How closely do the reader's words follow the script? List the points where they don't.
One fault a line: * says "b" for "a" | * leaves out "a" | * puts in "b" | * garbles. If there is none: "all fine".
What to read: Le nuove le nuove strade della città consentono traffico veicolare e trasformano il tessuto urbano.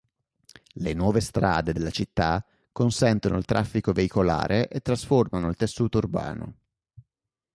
* leaves out "le nuove"
* puts in "il"